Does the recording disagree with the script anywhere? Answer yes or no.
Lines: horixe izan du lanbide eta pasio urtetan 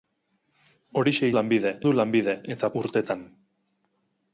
yes